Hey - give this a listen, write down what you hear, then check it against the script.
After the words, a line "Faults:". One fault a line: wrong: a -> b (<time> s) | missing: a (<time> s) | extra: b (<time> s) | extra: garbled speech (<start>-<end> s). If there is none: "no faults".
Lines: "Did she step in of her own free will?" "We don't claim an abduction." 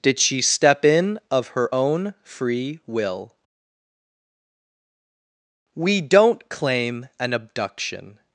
"Did she step in of her own free will?" "We don't claim an abduction."
Faults:
no faults